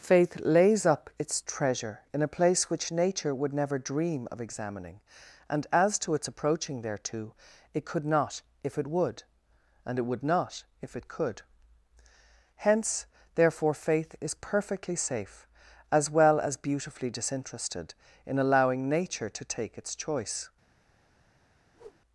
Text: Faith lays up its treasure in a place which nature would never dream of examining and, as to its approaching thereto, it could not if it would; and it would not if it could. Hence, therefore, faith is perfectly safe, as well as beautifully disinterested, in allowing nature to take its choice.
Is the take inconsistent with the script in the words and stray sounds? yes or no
yes